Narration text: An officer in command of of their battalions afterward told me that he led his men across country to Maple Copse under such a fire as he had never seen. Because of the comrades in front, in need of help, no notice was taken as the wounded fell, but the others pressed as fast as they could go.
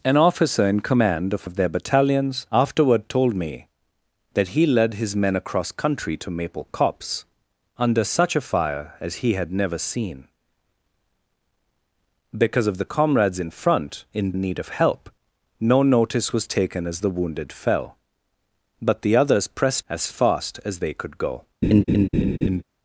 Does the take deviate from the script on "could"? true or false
false